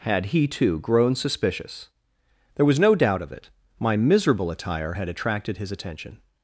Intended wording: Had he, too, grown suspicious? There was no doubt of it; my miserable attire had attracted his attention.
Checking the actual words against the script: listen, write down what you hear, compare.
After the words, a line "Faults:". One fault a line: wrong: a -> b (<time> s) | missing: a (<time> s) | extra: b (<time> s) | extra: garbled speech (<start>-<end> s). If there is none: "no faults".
Had he, too, grown suspicious? There was no doubt of it; my miserable attire had attracted his attention.
Faults:
no faults